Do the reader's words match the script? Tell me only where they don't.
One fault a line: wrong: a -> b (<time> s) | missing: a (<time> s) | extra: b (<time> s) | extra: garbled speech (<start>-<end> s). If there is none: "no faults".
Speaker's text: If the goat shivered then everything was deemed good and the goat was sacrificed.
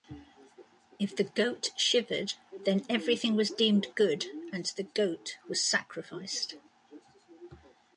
no faults